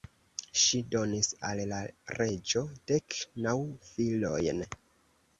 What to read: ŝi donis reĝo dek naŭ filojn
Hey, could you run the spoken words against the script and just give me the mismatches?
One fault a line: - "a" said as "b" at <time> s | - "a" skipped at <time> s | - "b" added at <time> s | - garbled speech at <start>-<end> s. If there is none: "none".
- "al la" added at 1.5 s